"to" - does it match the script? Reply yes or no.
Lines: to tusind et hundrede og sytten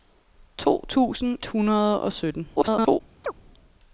yes